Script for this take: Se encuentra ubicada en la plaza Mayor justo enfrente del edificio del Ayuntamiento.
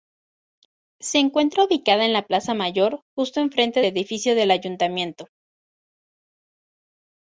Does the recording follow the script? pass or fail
fail